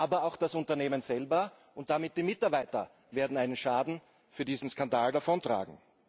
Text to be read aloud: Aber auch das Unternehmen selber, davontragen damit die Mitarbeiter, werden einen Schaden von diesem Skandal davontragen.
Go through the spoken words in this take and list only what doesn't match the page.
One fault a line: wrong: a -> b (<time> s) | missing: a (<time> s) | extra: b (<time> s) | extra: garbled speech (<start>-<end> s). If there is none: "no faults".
wrong: davontragen -> und (1.8 s)